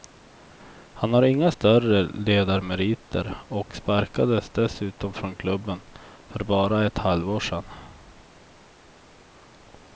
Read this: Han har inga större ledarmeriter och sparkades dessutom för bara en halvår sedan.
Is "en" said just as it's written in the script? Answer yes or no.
no